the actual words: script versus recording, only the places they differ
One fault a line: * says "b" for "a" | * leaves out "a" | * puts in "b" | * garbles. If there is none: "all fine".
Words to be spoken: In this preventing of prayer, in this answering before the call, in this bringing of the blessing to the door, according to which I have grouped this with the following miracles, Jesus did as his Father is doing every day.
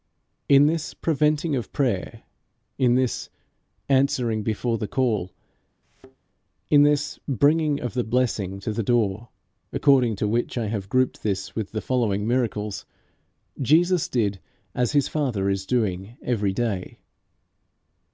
all fine